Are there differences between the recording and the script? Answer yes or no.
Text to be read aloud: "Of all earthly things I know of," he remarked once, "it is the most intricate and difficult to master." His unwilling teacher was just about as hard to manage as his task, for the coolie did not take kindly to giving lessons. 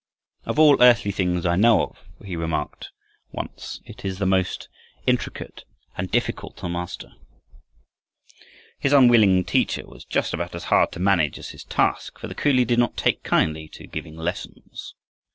no